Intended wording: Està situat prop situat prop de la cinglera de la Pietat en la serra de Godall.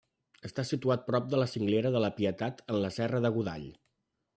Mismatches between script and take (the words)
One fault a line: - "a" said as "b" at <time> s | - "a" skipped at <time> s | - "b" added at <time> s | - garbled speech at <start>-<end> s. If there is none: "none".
- "situat prop" skipped at 1.3 s